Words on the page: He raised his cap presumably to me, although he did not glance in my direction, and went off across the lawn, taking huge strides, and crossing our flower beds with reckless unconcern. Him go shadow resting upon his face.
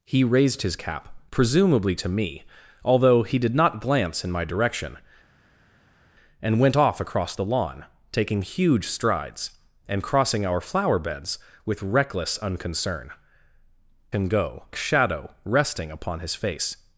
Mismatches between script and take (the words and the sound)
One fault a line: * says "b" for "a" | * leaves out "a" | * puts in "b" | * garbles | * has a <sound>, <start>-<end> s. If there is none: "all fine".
all fine